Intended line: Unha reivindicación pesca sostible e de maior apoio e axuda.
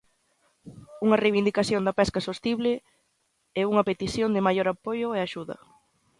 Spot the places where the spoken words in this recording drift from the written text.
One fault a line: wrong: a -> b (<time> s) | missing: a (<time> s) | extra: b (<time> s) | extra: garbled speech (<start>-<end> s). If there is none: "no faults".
extra: da (1.8 s)
extra: unha petición (3.7 s)